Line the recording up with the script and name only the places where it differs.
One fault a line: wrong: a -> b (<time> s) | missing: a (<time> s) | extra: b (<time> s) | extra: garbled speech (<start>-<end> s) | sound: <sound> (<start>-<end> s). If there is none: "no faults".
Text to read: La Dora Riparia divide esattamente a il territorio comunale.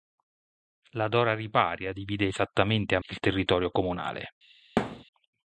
sound: thud (4.8-5.0 s)